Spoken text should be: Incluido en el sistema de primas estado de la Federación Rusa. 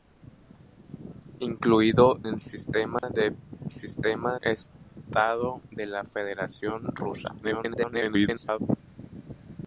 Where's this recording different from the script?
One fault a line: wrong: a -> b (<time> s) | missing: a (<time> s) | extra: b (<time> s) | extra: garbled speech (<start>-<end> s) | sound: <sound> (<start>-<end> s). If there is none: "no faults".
missing: en (2.2 s)
sound: dropout (3.0-3.0 s)
wrong: primas -> sistema (3.7 s)
extra: garbled speech (7.4-8.6 s)